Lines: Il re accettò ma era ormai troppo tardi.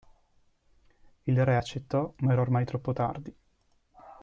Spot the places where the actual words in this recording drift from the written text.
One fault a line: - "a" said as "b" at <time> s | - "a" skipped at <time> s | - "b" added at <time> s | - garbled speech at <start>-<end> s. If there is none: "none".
none